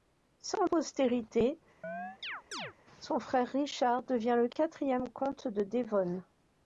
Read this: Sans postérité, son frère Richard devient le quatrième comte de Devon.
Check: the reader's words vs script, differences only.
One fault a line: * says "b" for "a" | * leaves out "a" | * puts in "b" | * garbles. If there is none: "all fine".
all fine